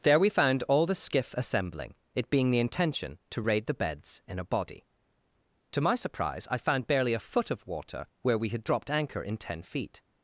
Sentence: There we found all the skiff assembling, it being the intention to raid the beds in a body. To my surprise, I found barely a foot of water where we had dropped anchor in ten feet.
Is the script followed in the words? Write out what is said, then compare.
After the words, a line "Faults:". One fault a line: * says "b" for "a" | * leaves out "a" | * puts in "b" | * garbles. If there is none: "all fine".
There we found all the skiff assembling, it being the intention to raid the beds in a body. To my surprise, I found barely a foot of water where we had dropped anchor in ten feet.
Faults:
all fine